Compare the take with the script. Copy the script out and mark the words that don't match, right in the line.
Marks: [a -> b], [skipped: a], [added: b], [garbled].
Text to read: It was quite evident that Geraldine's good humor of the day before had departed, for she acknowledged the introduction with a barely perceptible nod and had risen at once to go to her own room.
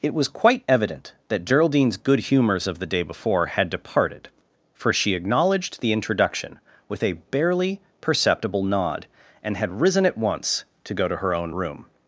It was quite evident that Geraldine's good [humor -> humors] of the day before had departed, for she acknowledged the introduction with a barely perceptible nod and had risen at once to go to her own room.